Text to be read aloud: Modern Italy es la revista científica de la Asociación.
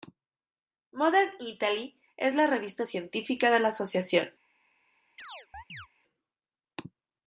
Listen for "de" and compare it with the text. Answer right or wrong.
right